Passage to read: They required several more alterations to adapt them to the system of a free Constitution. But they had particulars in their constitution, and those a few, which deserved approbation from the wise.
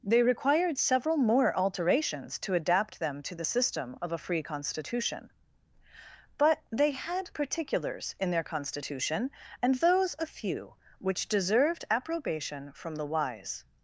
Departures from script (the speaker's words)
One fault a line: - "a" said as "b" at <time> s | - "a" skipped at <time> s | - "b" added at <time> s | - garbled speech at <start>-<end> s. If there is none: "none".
none